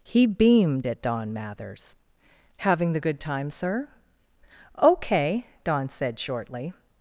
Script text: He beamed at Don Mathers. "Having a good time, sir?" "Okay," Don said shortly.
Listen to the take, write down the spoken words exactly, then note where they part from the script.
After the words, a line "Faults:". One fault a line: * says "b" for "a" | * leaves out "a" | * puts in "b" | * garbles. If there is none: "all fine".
He beamed at Don Mathers. "Having the good time, sir?" "Okay," Don said shortly.
Faults:
* says "the" for "a"